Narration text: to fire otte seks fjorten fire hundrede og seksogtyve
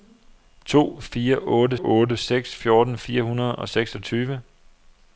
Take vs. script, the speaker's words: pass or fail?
fail